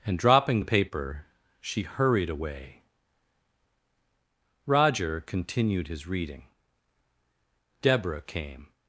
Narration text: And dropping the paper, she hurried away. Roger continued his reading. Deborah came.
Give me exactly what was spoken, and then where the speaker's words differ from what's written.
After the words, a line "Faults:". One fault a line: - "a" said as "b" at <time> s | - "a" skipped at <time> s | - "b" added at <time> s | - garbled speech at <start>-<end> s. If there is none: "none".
And dropping the paper, she hurried away. Roger continued his reading. Deborah came.
Faults:
none